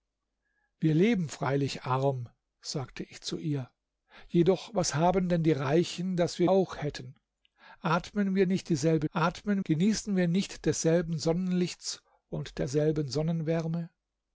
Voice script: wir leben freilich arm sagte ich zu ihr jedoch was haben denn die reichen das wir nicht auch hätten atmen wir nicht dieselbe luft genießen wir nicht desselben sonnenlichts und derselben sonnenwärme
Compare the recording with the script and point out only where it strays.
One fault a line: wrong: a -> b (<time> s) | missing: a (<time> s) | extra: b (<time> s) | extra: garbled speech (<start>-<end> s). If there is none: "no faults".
missing: nicht (6.5 s)
wrong: luft -> atmen (9.1 s)